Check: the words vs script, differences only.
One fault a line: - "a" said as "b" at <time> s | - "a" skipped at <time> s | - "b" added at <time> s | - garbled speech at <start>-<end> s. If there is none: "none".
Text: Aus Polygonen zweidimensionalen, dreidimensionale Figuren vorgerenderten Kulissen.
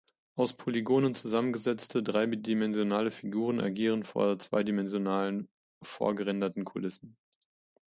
- "zweidimensionalen" said as "zusammengesetzte" at 1.1 s
- "agieren vor zweidimensionalen" added at 3.6 s